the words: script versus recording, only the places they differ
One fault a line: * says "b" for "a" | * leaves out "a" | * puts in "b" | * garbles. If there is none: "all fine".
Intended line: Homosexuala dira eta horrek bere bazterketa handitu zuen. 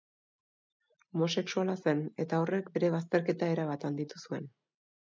* says "zen" for "dira"
* puts in "erabat"